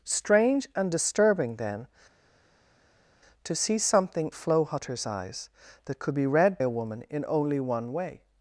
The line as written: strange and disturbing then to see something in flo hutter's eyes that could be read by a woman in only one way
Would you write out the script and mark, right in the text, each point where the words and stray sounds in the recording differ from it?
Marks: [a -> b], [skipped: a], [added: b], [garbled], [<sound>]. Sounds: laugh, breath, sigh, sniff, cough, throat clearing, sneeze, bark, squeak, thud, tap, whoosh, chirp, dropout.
strange and disturbing then to see something [skipped: in] flo hutter's eyes that could be read [skipped: by] a woman in only one way